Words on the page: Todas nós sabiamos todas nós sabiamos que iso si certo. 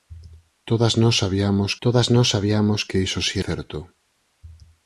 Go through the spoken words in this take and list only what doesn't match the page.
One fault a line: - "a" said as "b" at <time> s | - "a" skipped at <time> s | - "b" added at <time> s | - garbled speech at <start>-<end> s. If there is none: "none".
none